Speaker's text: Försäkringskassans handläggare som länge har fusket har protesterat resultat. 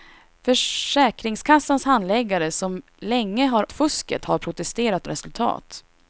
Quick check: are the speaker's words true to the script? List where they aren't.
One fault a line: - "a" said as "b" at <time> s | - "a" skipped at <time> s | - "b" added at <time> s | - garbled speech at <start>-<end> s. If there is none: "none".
none